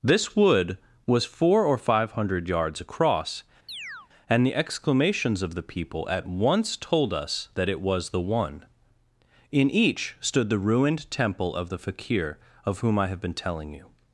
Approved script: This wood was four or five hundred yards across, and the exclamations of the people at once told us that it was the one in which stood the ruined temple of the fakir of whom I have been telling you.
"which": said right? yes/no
no